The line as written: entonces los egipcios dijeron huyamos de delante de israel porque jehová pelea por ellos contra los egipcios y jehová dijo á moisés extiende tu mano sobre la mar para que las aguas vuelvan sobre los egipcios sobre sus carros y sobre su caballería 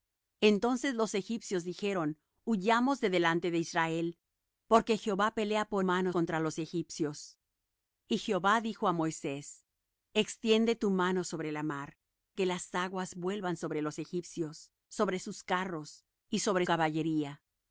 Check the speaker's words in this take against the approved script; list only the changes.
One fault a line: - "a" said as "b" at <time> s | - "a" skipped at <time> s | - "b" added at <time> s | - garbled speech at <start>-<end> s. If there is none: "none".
- "ellos" said as "mano" at 5.8 s
- "para" skipped at 12.0 s
- "su" skipped at 16.7 s